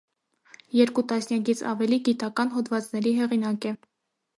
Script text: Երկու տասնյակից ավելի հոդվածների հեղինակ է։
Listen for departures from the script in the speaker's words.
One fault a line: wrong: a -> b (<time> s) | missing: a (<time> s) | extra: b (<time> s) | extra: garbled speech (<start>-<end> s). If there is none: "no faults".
extra: գիտական (2.1 s)